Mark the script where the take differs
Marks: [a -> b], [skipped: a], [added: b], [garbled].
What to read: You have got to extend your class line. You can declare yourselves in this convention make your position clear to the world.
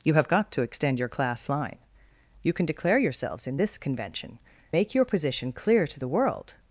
You have got to extend your class line. You can declare yourselves in this convention make your position clear to the world.